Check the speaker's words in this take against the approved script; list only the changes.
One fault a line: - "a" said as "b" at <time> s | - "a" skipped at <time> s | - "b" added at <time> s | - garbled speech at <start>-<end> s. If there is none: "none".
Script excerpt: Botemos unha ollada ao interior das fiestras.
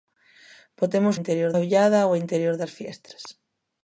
- "unha" said as "interior" at 1.2 s